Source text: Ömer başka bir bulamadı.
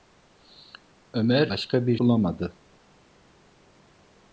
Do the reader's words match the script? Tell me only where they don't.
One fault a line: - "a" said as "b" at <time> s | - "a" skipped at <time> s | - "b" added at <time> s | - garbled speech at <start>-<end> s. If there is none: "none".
none